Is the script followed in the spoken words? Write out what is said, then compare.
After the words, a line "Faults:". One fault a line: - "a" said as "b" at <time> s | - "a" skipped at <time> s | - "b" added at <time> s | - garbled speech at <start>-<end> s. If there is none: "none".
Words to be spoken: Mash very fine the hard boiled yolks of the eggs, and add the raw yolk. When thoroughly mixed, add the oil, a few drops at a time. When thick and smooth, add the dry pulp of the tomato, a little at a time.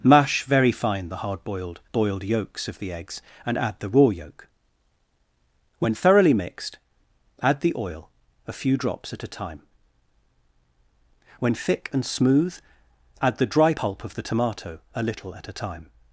Mash very fine the hard boiled boiled yolks of the eggs, and add the raw yolk. When thoroughly mixed, add the oil, a few drops at a time. When thick and smooth, add the dry pulp of the tomato, a little at a time.
Faults:
- "boiled" added at 1.9 s